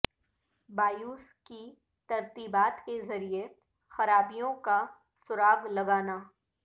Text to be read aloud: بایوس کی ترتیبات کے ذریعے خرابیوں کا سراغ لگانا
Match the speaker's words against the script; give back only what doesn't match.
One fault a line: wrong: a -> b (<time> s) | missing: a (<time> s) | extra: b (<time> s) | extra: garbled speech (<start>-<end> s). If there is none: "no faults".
no faults